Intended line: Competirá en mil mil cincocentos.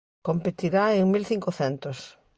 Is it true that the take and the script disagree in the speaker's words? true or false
true